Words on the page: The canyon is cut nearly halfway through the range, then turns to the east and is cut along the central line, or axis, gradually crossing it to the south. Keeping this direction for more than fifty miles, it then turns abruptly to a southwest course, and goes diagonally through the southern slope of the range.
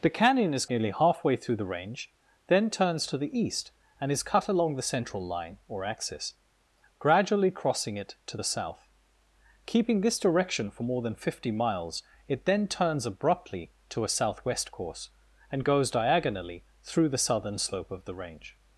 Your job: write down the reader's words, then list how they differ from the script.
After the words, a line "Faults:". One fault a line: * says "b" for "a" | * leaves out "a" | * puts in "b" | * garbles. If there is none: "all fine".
The canyon is nearly halfway through the range, then turns to the east and is cut along the central line, or axis, gradually crossing it to the south. Keeping this direction for more than fifty miles, it then turns abruptly to a southwest course, and goes diagonally through the southern slope of the range.
Faults:
* leaves out "cut"